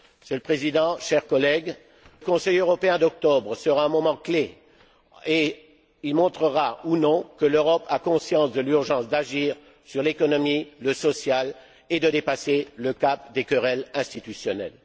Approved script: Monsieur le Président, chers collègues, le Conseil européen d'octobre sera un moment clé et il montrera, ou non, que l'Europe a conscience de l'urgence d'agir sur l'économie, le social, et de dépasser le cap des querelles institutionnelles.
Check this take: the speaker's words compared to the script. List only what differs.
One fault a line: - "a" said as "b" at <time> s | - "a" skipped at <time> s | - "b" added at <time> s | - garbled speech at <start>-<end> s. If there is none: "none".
- "le" skipped at 1.8 s